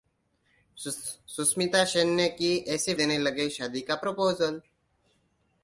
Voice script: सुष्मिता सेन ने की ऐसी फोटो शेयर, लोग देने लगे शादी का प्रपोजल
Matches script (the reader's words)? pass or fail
fail